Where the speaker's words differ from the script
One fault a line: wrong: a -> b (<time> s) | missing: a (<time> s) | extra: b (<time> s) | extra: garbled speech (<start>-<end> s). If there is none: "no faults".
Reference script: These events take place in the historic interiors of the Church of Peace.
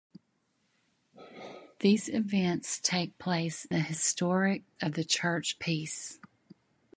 missing: in (3.7 s)
missing: interiors (4.6 s)
missing: of (5.6 s)